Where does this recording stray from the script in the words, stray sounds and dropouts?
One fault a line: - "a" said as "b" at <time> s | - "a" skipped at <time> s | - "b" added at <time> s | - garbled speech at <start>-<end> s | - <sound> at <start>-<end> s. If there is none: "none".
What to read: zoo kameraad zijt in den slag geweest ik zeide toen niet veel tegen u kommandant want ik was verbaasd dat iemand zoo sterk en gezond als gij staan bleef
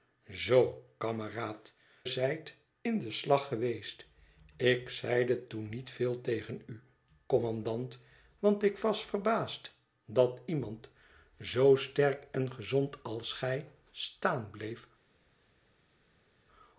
none